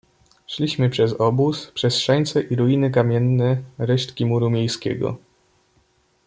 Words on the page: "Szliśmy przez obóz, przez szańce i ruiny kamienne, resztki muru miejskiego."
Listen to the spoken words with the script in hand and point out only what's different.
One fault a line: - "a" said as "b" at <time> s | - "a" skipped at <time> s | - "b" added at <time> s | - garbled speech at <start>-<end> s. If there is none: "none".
none